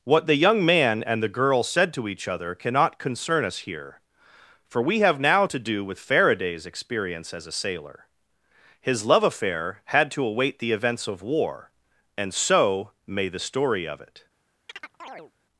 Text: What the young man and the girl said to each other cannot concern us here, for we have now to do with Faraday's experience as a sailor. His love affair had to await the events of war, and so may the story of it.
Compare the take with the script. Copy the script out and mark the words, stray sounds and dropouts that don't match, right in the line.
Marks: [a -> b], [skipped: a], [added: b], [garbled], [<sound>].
What the young man and the girl said to each other cannot concern us here, for we have now to do with Faraday's experience as a sailor. His love affair had to await the events of war, and so may the story of it. [chirp]